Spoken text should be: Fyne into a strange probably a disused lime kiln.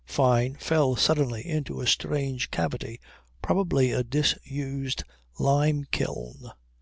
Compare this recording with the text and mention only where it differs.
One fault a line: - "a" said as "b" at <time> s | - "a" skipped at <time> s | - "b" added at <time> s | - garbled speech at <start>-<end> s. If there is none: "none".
- "fell suddenly" added at 0.6 s
- "cavity" added at 2.5 s